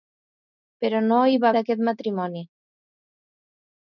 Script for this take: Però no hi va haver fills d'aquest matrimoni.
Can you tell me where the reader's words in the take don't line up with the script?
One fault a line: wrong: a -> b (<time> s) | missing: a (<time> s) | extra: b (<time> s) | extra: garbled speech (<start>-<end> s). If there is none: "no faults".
missing: haver fills (1.5 s)